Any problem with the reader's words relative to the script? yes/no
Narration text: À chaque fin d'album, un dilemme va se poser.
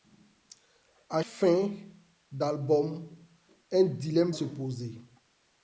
yes